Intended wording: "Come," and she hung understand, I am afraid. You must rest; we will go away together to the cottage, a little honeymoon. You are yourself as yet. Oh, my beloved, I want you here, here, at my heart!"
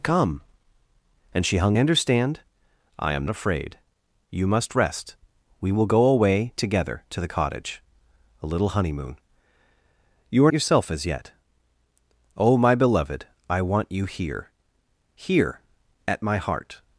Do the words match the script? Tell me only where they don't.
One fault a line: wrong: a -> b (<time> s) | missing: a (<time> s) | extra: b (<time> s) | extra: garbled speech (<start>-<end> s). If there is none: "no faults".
no faults